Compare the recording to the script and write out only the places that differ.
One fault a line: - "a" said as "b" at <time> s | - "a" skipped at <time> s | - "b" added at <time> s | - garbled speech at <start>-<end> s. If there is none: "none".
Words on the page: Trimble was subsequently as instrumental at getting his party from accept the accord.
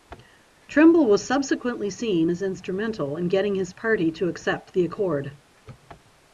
- "seen" added at 1.9 s
- "at" said as "in" at 3.2 s
- "from" said as "to" at 4.1 s